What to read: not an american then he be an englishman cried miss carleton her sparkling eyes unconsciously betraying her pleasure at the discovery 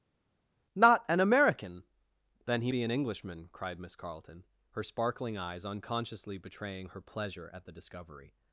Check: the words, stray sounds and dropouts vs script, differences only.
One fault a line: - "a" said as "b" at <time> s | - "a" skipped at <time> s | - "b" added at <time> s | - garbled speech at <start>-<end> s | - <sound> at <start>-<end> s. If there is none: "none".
none